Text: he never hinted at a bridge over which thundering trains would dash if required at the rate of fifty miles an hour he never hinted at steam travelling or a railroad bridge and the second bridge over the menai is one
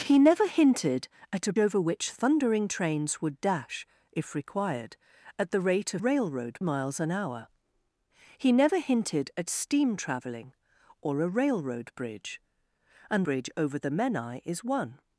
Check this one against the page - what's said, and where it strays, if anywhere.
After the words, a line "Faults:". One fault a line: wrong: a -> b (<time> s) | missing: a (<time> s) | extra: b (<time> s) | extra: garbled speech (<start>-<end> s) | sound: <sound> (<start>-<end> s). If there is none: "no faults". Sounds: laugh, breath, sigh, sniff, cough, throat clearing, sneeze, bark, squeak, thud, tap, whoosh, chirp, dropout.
he never hinted at a over which thundering trains would dash if required at the rate of railroad miles an hour he never hinted at steam travelling or a railroad bridge and bridge over the menai is one
Faults:
missing: bridge (1.5 s)
wrong: fifty -> railroad (6.0 s)
missing: the second (13.2 s)